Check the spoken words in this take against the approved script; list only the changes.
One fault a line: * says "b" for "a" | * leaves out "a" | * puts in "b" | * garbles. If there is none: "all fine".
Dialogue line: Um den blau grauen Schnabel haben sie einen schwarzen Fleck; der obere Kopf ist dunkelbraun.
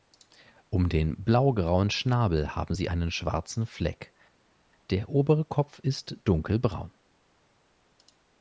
all fine